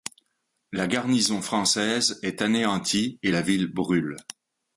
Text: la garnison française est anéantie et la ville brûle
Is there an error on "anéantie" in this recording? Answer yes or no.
no